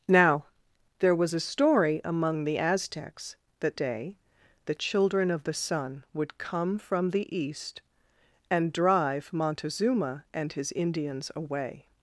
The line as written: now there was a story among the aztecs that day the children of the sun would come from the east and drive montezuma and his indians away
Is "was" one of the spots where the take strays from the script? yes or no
no